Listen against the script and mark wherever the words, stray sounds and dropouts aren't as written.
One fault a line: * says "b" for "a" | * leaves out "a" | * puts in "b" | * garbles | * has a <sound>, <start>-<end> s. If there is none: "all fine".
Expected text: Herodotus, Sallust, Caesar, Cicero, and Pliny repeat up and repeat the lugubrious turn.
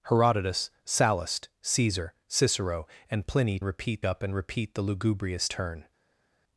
all fine